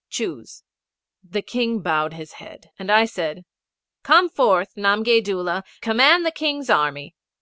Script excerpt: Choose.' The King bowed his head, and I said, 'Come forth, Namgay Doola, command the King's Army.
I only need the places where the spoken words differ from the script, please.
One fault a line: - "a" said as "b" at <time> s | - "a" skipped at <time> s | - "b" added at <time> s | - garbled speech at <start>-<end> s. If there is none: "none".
none